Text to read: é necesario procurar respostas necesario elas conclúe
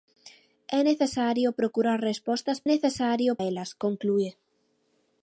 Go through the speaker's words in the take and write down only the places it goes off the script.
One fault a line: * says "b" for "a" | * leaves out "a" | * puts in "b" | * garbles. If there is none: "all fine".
all fine